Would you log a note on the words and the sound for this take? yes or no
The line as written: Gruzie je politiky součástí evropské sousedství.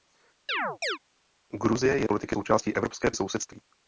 yes